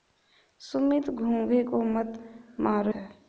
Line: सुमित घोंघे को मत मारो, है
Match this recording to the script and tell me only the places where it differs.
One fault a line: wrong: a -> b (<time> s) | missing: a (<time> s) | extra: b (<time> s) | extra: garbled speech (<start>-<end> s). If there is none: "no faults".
no faults